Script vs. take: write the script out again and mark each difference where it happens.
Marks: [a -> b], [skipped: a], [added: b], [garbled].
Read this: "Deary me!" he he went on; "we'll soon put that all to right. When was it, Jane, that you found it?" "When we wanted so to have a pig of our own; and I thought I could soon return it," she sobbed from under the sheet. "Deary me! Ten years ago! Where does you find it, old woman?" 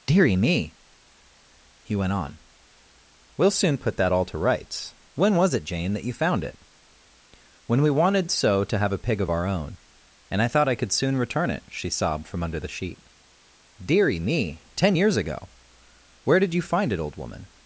"Deary me!" he [skipped: he] went on; "we'll soon put that all to [right. -> rights] When was it, Jane, that you found it?" "When we wanted so to have a pig of our own; and I thought I could soon return it," she sobbed from under the sheet. "Deary me! Ten years ago! Where [does -> did] you find it, old woman?"